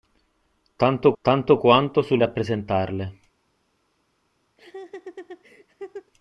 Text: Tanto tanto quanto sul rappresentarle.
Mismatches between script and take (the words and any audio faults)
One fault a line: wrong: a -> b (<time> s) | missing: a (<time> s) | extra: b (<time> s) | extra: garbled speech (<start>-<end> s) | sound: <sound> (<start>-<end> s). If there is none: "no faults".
sound: laugh (4.6-6.1 s)